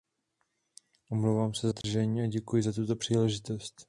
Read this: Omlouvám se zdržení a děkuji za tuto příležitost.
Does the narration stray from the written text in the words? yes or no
no